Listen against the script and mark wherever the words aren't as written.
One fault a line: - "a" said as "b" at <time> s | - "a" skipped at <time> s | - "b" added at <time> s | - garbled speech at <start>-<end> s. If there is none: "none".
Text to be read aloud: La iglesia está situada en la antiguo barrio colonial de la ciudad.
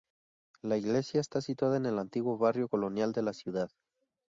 - "la" said as "el" at 1.9 s